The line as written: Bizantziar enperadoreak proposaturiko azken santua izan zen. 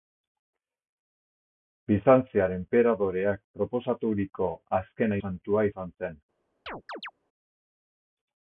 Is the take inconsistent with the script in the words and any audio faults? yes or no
yes